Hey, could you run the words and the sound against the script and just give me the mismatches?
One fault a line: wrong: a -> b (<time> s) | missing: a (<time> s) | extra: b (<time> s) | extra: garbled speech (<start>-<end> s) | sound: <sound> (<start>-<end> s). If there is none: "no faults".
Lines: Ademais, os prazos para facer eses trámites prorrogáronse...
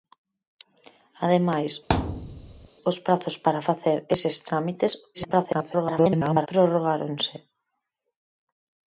sound: thud (1.9-2.7 s)
extra: garbled speech (5.1-6.5 s)